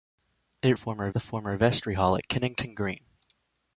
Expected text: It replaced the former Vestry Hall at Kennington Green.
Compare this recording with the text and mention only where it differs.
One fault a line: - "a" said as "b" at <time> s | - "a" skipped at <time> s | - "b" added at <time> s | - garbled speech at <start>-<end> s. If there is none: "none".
- "replaced" said as "former" at 0.7 s